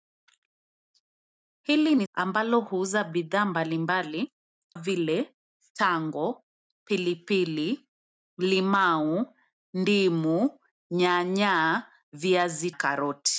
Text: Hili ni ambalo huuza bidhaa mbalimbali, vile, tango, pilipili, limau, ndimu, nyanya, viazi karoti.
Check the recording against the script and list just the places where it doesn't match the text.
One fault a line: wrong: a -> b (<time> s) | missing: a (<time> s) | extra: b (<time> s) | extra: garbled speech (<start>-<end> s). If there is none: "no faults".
no faults